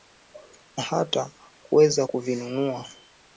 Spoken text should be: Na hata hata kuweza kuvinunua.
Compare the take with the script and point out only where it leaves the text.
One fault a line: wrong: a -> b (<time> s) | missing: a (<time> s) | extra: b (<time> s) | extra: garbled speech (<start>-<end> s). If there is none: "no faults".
missing: hata (1.3 s)